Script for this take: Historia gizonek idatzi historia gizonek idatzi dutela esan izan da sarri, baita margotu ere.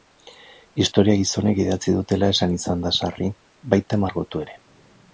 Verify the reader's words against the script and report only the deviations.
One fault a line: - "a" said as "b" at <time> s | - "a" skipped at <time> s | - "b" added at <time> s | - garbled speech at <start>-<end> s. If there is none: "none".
- "historia gizonek idatzi" skipped at 1.9 s